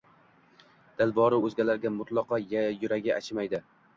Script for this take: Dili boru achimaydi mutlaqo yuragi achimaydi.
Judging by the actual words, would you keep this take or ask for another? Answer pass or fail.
fail